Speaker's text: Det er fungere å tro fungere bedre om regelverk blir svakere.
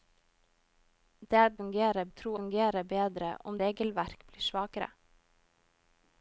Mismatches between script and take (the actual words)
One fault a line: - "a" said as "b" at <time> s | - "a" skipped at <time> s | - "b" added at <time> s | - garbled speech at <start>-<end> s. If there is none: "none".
none